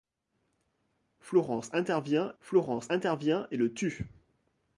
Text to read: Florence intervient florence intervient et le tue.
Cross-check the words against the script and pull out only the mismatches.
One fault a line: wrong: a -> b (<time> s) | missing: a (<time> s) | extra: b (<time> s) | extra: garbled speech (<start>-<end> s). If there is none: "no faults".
no faults